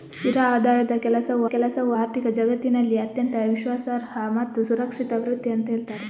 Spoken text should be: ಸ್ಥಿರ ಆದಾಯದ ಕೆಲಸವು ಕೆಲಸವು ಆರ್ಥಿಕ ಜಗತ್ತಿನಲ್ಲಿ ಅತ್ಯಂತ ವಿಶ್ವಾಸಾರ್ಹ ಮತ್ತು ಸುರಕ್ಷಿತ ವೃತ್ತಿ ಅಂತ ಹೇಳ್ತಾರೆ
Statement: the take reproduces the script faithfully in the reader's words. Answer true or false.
true